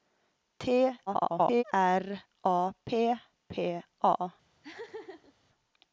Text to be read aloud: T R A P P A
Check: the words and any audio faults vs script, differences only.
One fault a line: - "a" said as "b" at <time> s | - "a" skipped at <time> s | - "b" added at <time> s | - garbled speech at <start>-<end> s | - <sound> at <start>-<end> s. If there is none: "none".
- garbled speech at 1.1-1.6 s
- laugh at 4.6-5.3 s